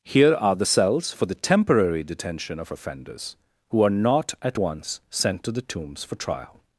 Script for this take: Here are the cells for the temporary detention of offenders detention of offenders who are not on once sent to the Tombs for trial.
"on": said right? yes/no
no